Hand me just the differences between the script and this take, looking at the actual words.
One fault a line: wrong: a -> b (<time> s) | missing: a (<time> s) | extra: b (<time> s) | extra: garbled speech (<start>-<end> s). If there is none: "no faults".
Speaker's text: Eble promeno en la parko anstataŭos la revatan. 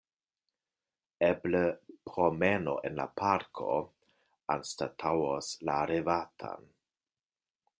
no faults